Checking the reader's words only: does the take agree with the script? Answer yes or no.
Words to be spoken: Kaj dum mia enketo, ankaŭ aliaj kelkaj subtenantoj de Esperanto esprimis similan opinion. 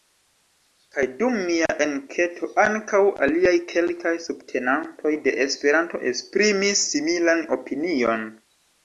yes